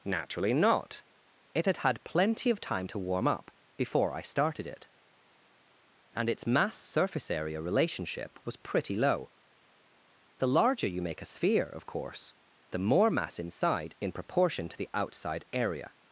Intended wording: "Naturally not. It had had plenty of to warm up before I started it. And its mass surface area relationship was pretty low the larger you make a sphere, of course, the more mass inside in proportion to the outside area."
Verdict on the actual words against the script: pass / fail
fail